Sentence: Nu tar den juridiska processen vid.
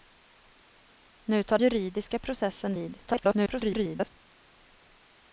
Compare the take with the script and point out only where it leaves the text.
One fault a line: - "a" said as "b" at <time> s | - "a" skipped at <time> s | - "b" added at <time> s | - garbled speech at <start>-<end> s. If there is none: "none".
- "den" skipped at 1.6 s
- garbled speech at 3.1-4.1 s